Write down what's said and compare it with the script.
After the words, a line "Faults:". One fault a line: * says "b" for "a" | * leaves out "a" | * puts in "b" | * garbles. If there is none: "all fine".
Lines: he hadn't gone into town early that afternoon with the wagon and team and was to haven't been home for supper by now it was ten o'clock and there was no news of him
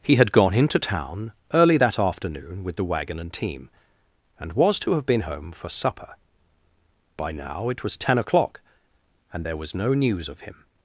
he had gone into town early that afternoon with the wagon and team and was to have been home for supper by now it was ten o'clock and there was no news of him
Faults:
* says "had" for "hadn't"
* says "have" for "haven't"